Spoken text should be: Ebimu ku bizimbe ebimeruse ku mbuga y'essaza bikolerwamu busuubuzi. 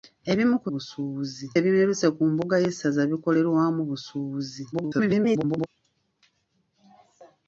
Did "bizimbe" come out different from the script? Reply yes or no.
yes